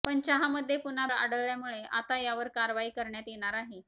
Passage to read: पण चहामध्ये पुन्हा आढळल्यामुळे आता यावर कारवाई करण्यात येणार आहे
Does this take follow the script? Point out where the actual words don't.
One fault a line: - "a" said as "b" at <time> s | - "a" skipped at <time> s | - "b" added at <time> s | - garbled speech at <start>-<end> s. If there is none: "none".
none